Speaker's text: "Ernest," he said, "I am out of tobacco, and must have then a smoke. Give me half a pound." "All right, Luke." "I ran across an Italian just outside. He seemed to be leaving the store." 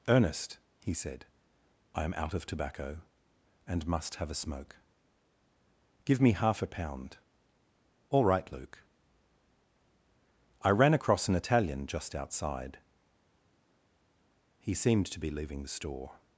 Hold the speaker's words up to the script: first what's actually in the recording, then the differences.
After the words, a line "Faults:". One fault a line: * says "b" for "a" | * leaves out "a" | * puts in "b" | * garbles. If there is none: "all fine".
"Ernest," he said, "I am out of tobacco, and must have a smoke. Give me half a pound." "All right, Luke." "I ran across an Italian just outside. He seemed to be leaving the store."
Faults:
* leaves out "then"